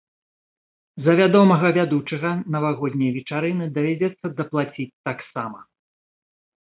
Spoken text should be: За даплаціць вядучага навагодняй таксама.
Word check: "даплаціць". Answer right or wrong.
wrong